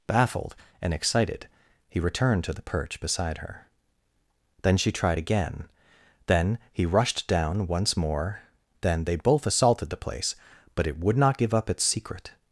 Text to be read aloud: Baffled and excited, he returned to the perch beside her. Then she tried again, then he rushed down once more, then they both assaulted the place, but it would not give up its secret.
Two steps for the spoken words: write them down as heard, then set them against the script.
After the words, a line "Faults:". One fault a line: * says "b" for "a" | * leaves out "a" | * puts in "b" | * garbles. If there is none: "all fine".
Baffled and excited, he returned to the perch beside her. Then she tried again, then he rushed down once more, then they both assaulted the place, but it would not give up its secret.
Faults:
all fine